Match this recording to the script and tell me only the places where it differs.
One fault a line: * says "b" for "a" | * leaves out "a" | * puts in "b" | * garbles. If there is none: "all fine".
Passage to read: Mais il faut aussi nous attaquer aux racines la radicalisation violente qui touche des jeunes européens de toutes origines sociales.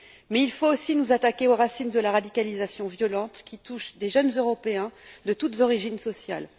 * puts in "de"